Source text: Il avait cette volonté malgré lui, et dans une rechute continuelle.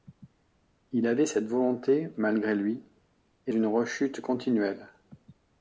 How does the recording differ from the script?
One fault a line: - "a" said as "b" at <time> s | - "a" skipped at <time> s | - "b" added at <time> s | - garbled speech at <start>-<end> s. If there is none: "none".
- "dans" skipped at 3.5 s